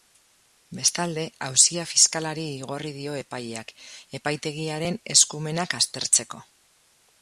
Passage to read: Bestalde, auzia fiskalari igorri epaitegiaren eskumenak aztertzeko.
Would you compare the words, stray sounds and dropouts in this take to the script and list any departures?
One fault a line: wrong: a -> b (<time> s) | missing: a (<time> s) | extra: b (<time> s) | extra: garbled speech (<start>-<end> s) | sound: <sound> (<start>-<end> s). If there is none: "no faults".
extra: dio epaileak (3.0 s)